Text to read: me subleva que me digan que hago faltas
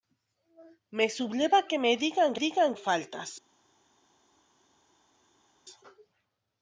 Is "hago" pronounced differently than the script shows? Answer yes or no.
yes